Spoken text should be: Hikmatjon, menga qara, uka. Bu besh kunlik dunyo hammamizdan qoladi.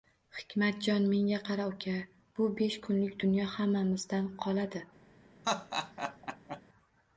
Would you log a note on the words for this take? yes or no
no